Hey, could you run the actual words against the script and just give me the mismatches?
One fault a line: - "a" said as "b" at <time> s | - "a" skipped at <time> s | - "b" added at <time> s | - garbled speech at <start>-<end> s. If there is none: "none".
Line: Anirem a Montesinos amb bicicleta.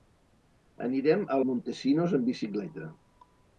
none